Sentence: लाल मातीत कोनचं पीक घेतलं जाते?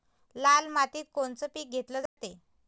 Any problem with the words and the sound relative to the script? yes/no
yes